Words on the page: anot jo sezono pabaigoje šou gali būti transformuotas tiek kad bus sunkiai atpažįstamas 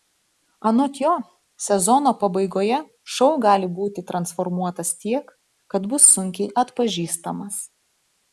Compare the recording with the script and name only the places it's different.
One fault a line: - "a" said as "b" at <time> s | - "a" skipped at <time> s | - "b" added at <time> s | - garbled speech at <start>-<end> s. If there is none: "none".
none